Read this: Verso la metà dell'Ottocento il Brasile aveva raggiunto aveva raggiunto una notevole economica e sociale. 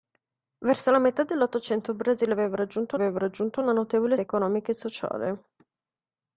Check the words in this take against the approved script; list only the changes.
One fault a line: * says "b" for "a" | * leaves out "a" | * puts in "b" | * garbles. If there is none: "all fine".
all fine